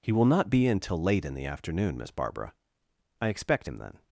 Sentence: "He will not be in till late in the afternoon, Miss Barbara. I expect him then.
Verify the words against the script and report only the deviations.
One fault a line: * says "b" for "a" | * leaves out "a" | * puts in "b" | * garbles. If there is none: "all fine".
all fine